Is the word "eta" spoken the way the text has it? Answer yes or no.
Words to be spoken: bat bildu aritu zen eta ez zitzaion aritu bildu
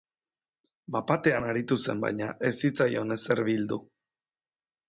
no